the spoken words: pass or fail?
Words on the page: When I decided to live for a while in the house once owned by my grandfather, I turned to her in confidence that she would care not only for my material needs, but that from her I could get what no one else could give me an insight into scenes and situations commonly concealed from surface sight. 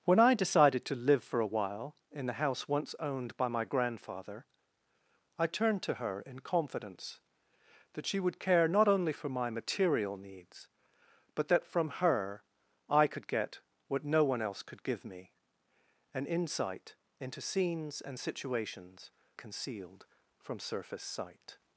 fail